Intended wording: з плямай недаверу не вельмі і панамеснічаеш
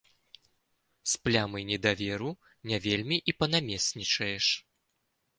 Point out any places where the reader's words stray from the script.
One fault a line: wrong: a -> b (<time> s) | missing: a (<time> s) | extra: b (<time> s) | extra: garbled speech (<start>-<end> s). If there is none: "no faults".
no faults